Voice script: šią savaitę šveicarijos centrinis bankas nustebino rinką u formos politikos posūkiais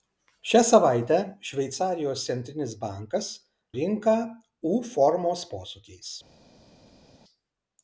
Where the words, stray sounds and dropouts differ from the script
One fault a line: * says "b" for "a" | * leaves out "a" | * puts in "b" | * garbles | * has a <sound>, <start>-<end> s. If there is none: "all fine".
* leaves out "nustebino"
* leaves out "politikos"